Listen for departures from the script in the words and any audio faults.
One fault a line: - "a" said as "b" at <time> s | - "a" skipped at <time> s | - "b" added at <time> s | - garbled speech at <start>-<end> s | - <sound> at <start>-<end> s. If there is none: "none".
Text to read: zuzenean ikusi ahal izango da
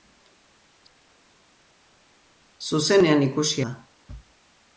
- "ahal izango" skipped at 3.7 s